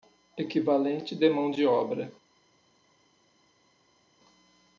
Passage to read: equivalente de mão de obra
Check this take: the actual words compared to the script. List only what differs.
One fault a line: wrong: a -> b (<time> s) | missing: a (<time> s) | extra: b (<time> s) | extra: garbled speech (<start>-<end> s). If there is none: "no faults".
no faults